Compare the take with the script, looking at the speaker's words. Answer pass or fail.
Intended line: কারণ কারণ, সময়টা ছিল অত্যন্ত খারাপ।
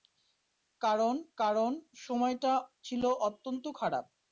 pass